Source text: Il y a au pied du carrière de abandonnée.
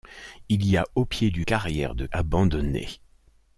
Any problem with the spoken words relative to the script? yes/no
no